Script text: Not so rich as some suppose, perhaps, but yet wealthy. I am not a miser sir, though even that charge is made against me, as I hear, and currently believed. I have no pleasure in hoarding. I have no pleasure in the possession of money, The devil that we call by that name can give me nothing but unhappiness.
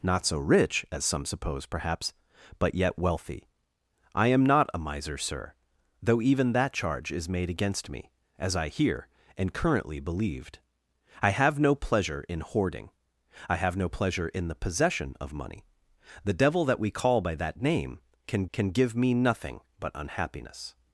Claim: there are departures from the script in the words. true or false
true